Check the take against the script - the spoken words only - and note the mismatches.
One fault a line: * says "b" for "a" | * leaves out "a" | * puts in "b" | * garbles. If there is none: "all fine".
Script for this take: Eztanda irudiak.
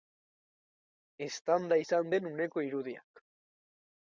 * puts in "izan den uneko"